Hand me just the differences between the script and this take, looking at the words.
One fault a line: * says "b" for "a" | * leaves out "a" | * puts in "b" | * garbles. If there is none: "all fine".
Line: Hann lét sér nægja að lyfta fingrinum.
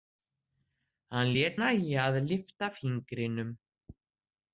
* leaves out "sér"